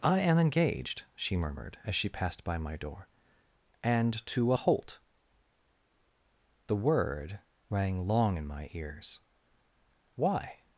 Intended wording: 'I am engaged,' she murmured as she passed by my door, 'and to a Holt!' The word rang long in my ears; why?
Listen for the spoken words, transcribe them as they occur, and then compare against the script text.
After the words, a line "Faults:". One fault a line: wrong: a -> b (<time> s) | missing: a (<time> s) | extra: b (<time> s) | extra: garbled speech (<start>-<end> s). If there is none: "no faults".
'I am engaged,' she murmured as she passed by my door, 'and to a Holt!' The word rang long in my ears; why?
Faults:
no faults